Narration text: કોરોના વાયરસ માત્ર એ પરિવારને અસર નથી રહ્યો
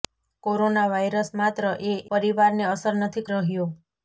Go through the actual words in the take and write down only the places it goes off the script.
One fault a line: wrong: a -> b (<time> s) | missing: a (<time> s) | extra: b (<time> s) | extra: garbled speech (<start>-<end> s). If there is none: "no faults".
no faults